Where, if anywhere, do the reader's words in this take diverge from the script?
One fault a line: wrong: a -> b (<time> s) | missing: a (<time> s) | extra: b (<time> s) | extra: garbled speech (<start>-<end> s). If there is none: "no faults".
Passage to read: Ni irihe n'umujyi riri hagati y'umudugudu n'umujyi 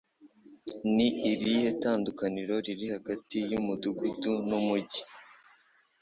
wrong: n'umujyi -> tandukaniro (1.8 s)